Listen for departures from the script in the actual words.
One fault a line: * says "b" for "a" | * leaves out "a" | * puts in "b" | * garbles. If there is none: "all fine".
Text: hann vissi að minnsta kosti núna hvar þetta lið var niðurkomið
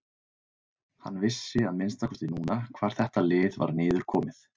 all fine